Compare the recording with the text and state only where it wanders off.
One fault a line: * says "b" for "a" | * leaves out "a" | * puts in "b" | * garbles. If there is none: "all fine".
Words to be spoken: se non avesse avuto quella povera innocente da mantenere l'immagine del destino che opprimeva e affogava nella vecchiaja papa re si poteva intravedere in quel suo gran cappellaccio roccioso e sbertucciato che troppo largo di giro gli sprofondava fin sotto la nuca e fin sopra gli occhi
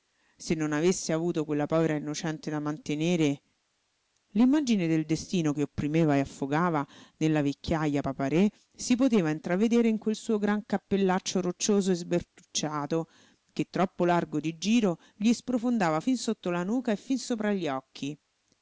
all fine